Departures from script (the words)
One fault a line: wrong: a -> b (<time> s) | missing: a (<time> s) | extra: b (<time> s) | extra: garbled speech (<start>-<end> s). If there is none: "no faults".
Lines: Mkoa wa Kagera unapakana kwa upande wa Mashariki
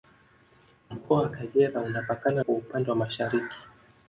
no faults